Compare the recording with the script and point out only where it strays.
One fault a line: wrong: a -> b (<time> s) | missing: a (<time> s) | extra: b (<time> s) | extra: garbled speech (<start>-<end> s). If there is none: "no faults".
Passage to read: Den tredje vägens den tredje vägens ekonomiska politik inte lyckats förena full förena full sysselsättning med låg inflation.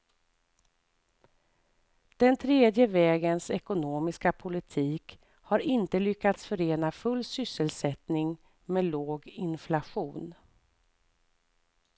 missing: den tredje vägens (3.5 s)
extra: har (5.3 s)
missing: förena full (7.2 s)